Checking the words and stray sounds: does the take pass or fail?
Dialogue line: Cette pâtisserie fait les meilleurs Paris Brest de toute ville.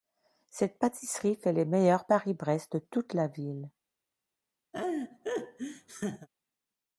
fail